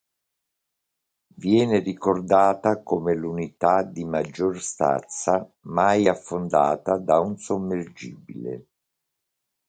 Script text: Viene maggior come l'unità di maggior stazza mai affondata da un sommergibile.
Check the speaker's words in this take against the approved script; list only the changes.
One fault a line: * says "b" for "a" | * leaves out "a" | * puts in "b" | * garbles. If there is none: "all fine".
* says "ricordata" for "maggior"